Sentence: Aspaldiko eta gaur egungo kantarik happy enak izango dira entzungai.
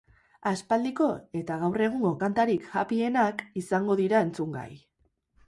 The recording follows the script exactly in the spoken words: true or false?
true